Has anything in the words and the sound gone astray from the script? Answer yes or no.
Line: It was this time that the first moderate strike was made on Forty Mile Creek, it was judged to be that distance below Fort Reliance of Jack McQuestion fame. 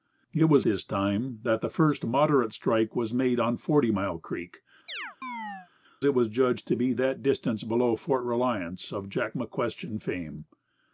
yes